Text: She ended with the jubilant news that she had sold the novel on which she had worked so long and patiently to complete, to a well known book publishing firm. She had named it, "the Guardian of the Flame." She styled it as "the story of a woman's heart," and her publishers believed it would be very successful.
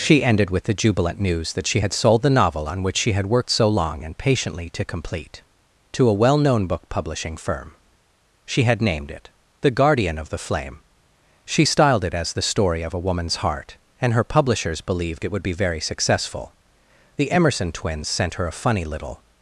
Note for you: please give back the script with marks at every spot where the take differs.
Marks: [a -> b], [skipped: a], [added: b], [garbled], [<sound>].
She ended with the jubilant news that she had sold the novel on which she had worked so long and patiently to complete, to a well known book publishing firm. She had named it, "the Guardian of the Flame." She styled it as "the story of a woman's heart," and her publishers believed it would be very successful. [added: The Emerson twins sent her a funny little]